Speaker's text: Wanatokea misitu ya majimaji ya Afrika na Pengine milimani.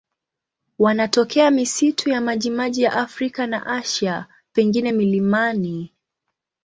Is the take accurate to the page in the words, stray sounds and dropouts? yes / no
no